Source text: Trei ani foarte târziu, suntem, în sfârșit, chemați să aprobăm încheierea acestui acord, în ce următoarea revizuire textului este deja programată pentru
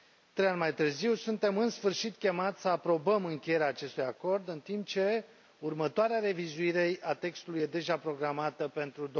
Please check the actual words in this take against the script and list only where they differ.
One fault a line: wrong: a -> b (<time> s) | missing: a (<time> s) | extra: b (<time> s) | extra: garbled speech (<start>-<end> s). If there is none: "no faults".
wrong: foarte -> mai (0.6 s)
extra: timp (4.6 s)
extra: a (7.0 s)